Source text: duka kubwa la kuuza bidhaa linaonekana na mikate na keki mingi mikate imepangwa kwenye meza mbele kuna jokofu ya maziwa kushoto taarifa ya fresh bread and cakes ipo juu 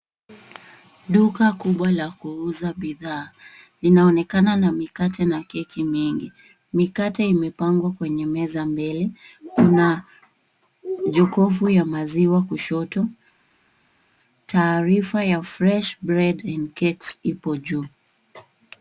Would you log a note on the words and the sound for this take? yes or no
no